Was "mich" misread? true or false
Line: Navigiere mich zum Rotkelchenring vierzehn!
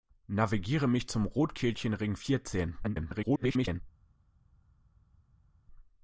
false